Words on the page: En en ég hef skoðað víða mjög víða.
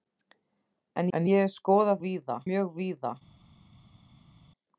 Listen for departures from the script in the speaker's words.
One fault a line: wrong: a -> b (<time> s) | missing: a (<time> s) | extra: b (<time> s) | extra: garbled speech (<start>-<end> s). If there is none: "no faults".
no faults